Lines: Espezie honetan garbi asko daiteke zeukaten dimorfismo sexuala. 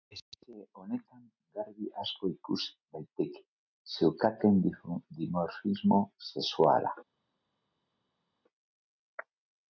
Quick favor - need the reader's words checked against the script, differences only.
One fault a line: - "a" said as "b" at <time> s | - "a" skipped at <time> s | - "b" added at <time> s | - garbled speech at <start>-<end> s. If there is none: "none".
- "ikus" added at 2.4 s